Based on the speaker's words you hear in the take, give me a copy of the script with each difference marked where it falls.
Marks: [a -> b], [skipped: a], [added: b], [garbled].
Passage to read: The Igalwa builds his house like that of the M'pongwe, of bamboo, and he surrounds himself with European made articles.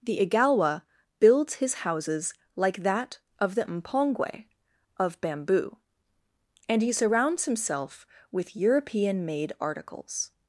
The Igalwa builds his [house -> houses] like that of the M'pongwe, of bamboo, and he surrounds himself with European made articles.